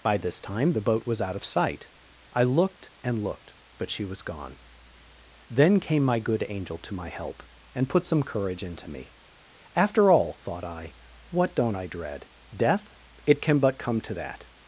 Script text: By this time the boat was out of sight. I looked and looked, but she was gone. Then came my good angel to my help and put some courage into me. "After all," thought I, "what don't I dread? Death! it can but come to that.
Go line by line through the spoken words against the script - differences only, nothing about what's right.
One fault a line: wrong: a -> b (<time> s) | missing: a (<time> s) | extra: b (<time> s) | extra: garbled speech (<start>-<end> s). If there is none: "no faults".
no faults